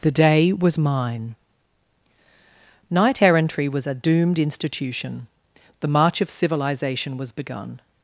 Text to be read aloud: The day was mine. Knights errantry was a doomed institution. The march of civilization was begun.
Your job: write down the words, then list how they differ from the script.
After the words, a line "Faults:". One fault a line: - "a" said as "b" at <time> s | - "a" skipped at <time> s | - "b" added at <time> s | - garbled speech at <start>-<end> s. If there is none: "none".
The day was mine. Knight errantry was a doomed institution. The march of civilization was begun.
Faults:
- "Knights" said as "Knight" at 2.9 s